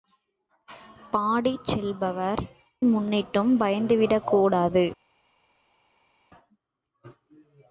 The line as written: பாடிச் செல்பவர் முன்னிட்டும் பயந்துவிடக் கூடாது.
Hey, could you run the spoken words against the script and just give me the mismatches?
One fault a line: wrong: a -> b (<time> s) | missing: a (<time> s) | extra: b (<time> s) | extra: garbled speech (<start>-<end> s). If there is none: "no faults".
no faults